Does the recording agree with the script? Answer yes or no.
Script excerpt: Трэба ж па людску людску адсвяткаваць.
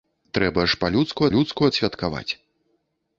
yes